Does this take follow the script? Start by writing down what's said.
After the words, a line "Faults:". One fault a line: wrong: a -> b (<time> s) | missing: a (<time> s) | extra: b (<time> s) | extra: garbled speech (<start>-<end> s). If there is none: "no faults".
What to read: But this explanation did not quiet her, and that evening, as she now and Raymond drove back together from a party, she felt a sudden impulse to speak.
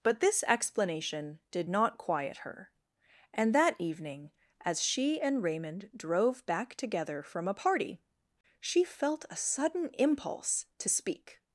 But this explanation did not quiet her, and that evening, as she and Raymond drove back together from a party, she felt a sudden impulse to speak.
Faults:
missing: now (5.2 s)